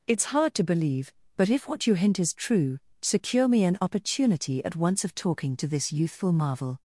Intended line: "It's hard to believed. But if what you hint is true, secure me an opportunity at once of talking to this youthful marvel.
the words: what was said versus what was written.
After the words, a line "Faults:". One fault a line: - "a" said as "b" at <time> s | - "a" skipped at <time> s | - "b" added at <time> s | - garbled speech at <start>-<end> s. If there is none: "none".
"It's hard to believe. But if what you hint is true, secure me an opportunity at once of talking to this youthful marvel.
Faults:
- "believed" said as "believe" at 0.6 s